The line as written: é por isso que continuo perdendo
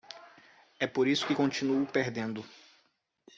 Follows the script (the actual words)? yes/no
yes